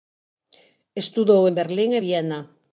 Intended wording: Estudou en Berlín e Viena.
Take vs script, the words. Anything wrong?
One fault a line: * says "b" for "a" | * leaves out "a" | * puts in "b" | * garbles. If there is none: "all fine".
all fine